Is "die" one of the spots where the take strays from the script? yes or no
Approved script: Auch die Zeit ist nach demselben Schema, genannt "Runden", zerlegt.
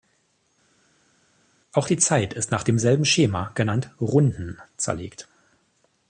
no